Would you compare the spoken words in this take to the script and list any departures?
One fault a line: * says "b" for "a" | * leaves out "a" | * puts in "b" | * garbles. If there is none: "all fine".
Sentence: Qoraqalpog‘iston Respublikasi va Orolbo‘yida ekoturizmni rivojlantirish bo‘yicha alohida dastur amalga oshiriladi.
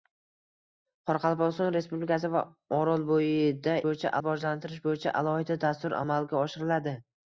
* says "bo‘yicha" for "ekoturizmni"